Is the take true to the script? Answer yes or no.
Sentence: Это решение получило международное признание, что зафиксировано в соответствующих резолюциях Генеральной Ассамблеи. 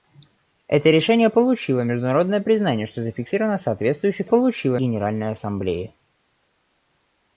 no